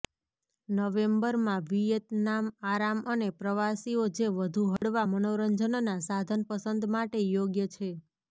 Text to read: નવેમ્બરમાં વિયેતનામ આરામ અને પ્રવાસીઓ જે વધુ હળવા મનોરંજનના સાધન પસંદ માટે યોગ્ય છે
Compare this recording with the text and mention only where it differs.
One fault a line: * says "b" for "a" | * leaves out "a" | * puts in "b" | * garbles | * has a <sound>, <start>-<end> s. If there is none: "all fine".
* has a dropout, 4.8-4.8 s